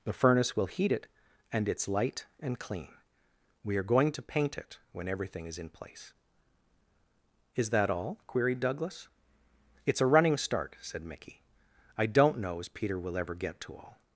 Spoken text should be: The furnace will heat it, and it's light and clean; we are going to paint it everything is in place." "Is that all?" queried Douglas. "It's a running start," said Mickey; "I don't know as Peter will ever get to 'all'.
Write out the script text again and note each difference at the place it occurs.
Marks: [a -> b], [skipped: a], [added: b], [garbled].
The furnace will heat it, and it's light and clean; we are going to paint it [added: when] everything is in place." "Is that all?" queried Douglas. "It's a running start," said Mickey; "I don't know as Peter will ever get to 'all'.